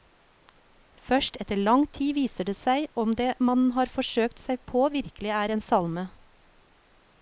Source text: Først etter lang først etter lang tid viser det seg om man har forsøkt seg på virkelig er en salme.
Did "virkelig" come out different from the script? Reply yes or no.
no